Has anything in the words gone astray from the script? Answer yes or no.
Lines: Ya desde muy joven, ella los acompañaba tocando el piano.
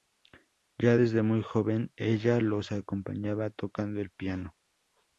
no